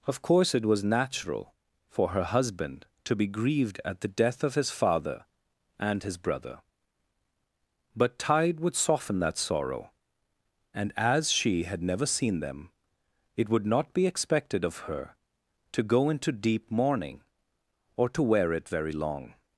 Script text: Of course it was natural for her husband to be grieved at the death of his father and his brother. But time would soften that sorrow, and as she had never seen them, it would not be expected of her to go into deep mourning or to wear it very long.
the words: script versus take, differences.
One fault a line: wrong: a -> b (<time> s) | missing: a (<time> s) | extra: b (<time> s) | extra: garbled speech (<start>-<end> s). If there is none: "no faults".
wrong: time -> tide (8.2 s)